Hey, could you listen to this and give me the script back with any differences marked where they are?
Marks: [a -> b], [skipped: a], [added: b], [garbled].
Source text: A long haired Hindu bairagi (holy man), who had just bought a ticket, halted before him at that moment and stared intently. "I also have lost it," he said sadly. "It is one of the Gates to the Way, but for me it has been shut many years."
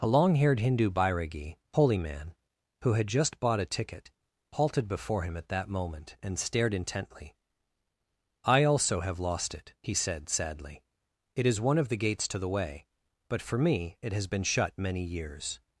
A long haired Hindu bairagi (holy man), who had just bought a ticket, halted before him at that moment and stared intently. "I also have lost it," he said sadly. "It is one of the Gates to the Way, but for me it has been shut many years."